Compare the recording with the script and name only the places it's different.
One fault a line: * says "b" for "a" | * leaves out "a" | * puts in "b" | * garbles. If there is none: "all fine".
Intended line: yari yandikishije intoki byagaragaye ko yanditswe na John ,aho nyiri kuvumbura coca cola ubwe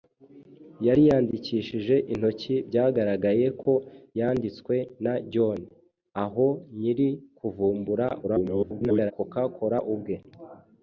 * garbles